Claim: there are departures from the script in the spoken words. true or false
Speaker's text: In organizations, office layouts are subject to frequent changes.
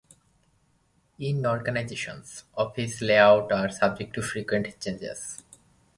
false